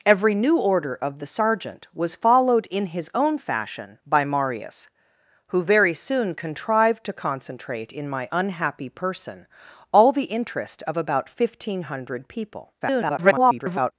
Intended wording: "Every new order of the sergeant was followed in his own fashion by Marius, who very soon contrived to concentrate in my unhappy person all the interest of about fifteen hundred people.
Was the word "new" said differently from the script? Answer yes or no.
no